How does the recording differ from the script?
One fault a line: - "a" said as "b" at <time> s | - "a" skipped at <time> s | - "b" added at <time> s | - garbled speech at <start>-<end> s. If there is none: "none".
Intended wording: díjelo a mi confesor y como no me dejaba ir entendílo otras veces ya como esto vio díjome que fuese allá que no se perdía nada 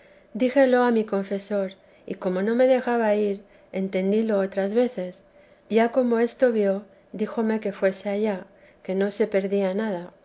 none